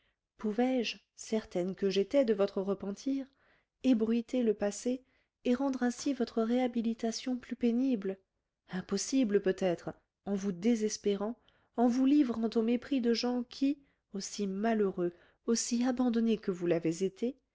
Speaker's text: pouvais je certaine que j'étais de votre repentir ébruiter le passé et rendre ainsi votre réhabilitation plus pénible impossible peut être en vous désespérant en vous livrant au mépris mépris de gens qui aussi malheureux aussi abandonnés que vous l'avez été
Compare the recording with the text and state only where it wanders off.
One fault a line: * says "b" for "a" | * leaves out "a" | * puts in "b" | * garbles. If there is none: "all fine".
* leaves out "mépris"